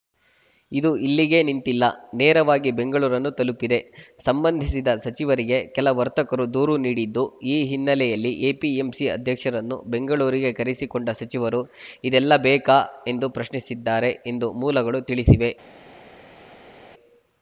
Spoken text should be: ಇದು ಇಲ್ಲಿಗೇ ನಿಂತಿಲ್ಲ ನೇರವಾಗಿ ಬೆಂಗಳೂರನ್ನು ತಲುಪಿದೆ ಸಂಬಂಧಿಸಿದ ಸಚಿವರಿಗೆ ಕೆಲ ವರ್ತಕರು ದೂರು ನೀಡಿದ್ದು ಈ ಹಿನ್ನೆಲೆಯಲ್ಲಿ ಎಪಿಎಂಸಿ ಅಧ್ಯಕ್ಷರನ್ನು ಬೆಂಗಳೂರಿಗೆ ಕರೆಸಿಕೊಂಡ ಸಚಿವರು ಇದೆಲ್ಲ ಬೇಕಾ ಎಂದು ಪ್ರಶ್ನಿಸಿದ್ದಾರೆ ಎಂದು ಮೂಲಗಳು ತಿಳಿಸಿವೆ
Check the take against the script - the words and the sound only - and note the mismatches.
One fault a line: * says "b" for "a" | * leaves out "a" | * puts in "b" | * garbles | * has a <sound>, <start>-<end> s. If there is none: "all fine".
all fine